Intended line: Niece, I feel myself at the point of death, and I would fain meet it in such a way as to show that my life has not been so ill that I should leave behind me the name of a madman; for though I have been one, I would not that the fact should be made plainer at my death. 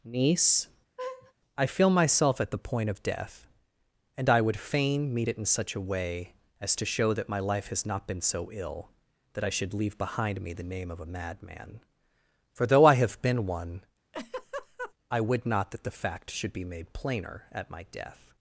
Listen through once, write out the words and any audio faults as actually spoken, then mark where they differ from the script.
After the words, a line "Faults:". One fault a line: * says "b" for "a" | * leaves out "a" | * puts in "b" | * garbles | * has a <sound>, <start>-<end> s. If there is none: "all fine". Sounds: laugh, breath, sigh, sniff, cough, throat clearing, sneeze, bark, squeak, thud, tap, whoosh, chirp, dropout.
Niece, I feel myself at the point of death, and I would fain meet it in such a way as to show that my life has not been so ill that I should leave behind me the name of a madman; for though I have been one, I would not that the fact should be made plainer at my death.
Faults:
* has a laugh, 1.0-1.3 s
* has a laugh, 14.1-14.9 s